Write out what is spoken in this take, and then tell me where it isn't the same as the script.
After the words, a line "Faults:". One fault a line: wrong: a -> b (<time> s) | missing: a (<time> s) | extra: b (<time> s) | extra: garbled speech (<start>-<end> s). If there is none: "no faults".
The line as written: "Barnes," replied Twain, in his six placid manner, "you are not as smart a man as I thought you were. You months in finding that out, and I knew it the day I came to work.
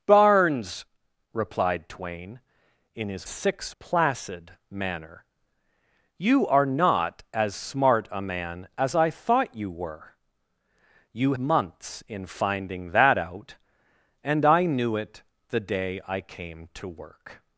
"Barnes," replied Twain, in his six placid manner, "you are not as smart a man as I thought you were. You months in finding that out, and I knew it the day I came to work.
Faults:
no faults